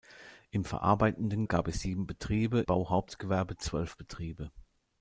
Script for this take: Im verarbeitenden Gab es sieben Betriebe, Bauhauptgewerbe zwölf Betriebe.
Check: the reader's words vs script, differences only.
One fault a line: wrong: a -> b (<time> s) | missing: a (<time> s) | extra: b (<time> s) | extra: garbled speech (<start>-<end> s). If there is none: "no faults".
no faults